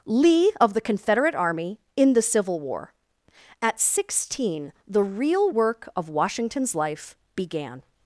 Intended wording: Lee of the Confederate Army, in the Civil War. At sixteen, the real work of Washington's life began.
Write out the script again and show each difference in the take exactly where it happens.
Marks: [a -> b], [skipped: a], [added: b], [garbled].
Lee of the Confederate Army, in the Civil War. At sixteen, the real work of Washington's life began.